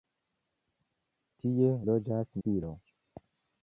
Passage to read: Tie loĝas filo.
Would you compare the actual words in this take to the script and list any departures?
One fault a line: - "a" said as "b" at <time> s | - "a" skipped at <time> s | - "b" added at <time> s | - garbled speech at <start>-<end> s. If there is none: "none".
none